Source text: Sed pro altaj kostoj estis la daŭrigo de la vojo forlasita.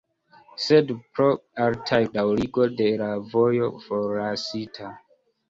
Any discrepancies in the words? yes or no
yes